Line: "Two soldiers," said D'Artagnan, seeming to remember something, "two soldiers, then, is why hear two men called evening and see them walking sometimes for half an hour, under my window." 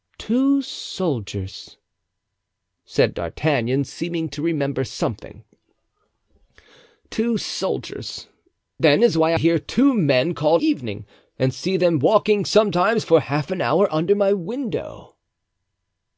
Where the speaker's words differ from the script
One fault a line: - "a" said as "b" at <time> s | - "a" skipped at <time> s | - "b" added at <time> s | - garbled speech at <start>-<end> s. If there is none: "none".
none